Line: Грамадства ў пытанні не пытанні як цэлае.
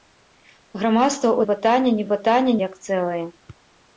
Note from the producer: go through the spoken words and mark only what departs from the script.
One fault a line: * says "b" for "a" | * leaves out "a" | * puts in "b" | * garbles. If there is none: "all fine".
all fine